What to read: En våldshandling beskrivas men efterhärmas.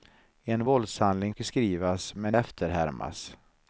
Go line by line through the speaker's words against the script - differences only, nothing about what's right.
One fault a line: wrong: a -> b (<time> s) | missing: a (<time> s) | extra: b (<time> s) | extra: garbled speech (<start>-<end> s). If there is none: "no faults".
no faults